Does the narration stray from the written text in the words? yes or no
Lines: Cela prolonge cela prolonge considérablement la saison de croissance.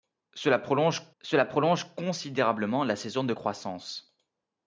no